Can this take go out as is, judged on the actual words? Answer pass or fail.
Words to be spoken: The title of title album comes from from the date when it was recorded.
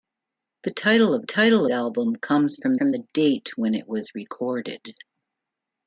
pass